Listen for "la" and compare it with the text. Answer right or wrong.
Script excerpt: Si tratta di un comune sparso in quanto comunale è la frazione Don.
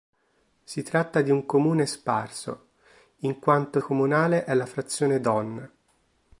right